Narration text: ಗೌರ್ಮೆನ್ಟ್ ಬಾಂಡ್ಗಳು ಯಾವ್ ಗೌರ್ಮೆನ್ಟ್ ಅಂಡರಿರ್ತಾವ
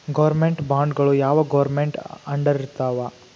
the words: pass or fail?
pass